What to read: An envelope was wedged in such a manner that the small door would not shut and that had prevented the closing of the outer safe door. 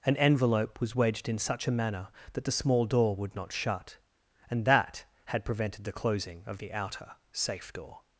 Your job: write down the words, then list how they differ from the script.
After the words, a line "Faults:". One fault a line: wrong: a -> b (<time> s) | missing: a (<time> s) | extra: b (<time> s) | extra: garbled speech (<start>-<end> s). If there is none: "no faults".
An envelope was wedged in such a manner that the small door would not shut and that had prevented the closing of the outer safe door.
Faults:
no faults